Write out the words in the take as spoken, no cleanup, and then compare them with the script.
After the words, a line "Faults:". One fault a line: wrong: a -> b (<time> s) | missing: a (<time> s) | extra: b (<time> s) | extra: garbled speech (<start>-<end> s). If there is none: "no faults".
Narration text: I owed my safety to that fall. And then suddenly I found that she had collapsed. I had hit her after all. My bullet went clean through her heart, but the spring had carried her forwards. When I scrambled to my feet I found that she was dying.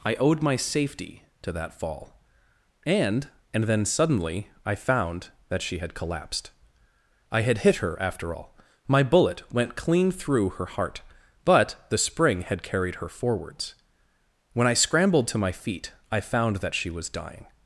I owed my safety to that fall. And And then suddenly I found that she had collapsed. I had hit her after all. My bullet went clean through her heart, but the spring had carried her forwards. When I scrambled to my feet I found that she was dying.
Faults:
extra: And (3.5 s)